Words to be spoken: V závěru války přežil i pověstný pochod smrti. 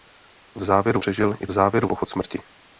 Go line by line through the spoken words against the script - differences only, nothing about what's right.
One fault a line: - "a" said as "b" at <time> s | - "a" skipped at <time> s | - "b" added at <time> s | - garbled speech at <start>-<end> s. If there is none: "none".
- "války" skipped at 1.0 s
- "pověstný" said as "závěru" at 1.5 s